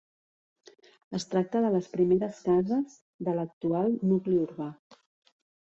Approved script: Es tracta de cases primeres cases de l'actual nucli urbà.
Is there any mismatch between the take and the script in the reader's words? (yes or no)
yes